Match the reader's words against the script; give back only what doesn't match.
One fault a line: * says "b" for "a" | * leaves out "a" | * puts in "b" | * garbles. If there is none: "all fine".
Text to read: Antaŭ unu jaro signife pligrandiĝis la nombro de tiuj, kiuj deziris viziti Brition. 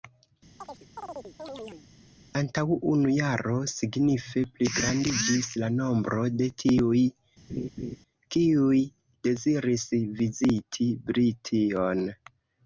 all fine